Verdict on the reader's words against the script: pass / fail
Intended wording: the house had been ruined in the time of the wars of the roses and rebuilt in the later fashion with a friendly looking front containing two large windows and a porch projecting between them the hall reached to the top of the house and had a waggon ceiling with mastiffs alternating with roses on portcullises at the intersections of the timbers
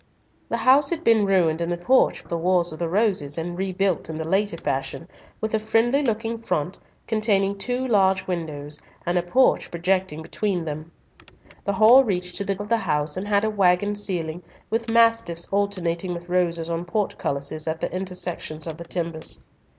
fail